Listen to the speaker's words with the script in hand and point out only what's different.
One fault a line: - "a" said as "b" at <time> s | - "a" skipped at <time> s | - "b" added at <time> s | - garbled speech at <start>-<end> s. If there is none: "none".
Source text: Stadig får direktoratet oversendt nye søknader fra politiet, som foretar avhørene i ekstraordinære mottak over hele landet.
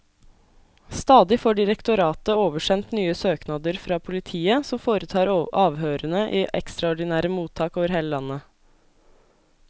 none